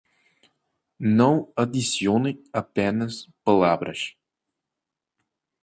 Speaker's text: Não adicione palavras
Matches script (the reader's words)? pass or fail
fail